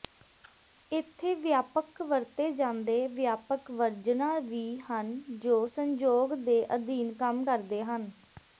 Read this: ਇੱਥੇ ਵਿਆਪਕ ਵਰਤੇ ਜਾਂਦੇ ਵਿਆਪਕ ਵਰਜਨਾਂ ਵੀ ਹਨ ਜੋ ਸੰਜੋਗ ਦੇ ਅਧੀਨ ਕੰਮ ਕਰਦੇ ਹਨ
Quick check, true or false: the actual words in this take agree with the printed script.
true